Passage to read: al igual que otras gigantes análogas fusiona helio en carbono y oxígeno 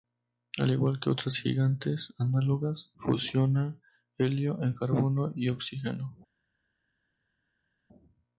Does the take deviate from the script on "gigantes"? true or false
false